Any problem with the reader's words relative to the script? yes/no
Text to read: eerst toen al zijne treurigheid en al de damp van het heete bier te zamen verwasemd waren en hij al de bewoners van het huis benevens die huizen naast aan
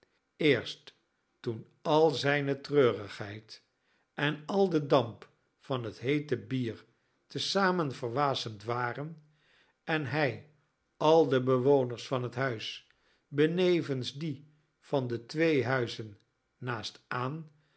yes